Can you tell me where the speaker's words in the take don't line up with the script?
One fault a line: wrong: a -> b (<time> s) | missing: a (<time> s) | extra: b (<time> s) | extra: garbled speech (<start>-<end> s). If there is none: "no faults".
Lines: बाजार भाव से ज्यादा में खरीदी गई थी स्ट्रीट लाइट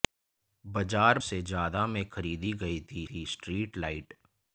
missing: भाव (1.2 s)
extra: थी (3.1 s)